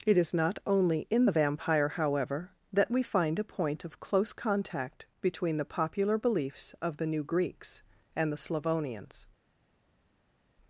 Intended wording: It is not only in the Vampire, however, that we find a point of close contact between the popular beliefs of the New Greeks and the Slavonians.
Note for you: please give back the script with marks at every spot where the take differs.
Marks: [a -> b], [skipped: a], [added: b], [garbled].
It is not only in the Vampire, however, that we find a point of close contact between the popular beliefs of the New Greeks and the Slavonians.